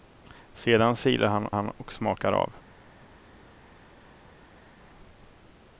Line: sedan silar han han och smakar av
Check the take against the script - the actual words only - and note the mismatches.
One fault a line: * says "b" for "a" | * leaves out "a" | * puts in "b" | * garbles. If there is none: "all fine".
all fine